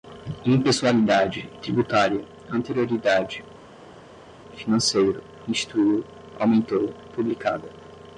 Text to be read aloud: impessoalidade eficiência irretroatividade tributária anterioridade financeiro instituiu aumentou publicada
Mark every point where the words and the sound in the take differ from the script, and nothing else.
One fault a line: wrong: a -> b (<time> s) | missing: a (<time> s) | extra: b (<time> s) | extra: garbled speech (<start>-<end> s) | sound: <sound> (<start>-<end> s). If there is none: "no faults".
missing: eficiência irretroatividade (1.5 s)